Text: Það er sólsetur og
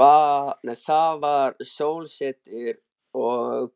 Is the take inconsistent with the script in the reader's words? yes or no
yes